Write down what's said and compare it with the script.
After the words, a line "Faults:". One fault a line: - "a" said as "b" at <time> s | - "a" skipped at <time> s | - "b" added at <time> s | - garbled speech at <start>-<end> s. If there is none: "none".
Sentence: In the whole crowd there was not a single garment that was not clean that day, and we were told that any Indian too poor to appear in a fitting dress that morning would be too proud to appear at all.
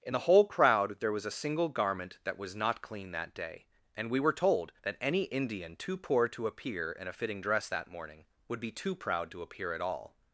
In the whole crowd there was a single garment that was not clean that day, and we were told that any Indian too poor to appear in a fitting dress that morning would be too proud to appear at all.
Faults:
- "not" skipped at 1.3 s